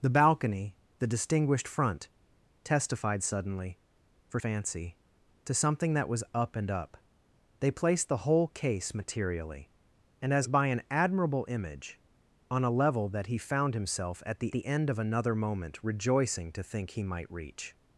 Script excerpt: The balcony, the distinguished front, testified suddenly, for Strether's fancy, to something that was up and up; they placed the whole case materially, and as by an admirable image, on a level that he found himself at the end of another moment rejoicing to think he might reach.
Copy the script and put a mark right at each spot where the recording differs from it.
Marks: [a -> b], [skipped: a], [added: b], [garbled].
The balcony, the distinguished front, testified suddenly, for [skipped: Strether's] fancy, to something that was up and up; they placed the whole case materially, and as by an admirable image, on a level that he found himself at the [added: the] end of another moment rejoicing to think he might reach.